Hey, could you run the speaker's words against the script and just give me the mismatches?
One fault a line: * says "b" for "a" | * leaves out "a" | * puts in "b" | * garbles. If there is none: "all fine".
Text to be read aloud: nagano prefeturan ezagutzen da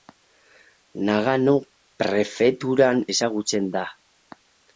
all fine